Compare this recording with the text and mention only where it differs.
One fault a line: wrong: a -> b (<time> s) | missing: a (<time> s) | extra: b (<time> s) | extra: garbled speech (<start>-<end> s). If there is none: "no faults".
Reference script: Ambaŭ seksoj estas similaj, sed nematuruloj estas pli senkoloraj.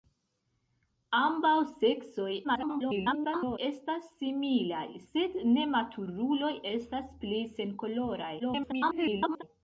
extra: garbled speech (2.4-3.6 s)
extra: garbled speech (8.4-9.4 s)